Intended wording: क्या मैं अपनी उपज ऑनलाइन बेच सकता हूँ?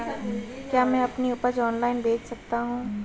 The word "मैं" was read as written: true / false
true